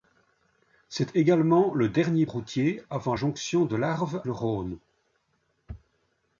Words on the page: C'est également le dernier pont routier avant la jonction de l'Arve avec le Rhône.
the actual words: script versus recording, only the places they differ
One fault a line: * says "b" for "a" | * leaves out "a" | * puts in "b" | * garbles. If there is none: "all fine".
* leaves out "pont"
* leaves out "la"
* leaves out "avec"